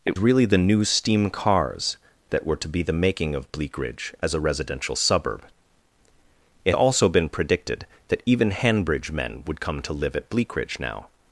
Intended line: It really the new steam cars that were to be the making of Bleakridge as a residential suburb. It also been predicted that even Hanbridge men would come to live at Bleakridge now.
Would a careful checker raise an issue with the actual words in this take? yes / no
no